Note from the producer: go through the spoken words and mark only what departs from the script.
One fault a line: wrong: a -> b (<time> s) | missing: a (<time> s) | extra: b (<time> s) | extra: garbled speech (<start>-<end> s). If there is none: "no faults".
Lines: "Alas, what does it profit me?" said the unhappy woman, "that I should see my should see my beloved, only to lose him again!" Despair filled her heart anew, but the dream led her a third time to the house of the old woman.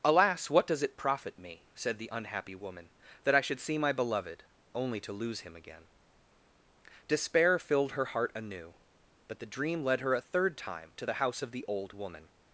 missing: should see my (3.9 s)